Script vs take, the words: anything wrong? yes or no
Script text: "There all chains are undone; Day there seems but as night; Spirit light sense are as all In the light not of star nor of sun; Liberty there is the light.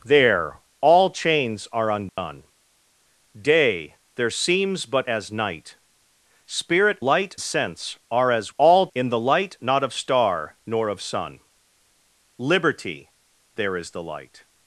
no